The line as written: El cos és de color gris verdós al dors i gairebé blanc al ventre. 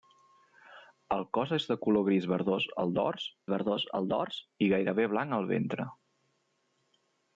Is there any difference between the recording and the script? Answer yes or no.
yes